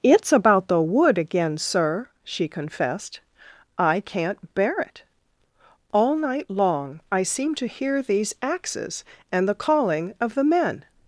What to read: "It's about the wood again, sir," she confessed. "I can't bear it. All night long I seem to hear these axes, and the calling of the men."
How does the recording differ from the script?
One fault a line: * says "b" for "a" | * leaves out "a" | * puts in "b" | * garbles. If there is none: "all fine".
all fine